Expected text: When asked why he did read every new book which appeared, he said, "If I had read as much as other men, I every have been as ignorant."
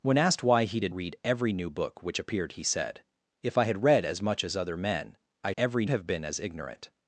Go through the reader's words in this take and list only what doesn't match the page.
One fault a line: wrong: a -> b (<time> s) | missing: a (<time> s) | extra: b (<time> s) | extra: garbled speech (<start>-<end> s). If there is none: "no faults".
no faults